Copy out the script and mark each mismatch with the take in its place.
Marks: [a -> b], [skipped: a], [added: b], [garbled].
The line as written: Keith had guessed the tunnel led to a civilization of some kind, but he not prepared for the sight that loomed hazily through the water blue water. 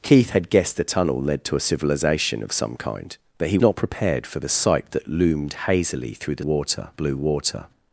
Keith had guessed the tunnel led to a civilization of some kind, but he not prepared for the sight that loomed hazily through the water blue water.